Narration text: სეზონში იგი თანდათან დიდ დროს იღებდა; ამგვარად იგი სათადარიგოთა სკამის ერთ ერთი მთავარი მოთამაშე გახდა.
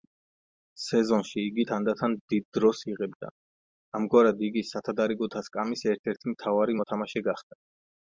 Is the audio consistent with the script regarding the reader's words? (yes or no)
yes